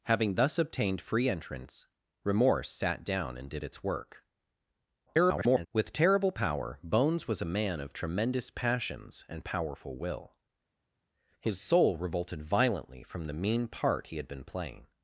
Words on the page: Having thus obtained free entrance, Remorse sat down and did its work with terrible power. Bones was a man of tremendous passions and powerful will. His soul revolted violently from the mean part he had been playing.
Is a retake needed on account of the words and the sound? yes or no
yes